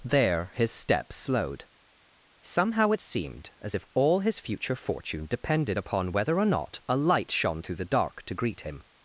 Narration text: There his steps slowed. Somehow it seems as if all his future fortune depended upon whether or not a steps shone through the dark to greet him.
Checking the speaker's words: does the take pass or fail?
fail